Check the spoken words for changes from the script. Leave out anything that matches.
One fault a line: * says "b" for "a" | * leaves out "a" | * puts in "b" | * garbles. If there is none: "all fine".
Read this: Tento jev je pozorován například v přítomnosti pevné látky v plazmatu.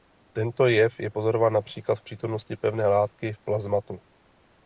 all fine